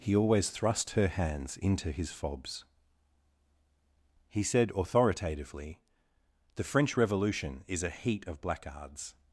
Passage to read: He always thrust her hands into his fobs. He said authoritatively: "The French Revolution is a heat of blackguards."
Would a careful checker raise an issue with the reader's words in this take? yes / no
no